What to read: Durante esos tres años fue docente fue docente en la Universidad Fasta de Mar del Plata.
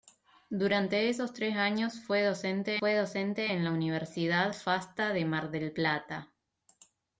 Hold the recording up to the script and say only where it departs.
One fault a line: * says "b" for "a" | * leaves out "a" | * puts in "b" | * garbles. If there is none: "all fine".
all fine